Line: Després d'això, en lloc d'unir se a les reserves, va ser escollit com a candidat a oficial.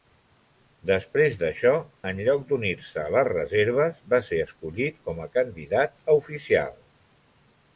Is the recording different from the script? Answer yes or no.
no